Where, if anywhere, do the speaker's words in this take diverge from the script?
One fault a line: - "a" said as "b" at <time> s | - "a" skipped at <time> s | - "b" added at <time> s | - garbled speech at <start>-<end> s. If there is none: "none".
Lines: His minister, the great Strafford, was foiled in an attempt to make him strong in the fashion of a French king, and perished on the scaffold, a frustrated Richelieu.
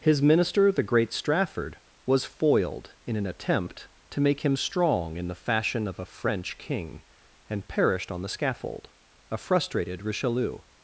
none